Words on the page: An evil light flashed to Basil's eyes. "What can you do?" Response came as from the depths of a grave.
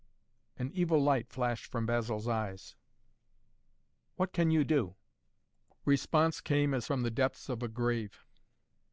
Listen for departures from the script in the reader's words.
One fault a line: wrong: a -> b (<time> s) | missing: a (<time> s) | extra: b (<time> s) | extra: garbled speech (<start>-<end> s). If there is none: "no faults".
wrong: to -> from (1.7 s)